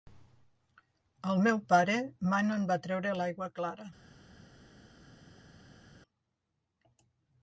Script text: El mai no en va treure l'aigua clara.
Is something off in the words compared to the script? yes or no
yes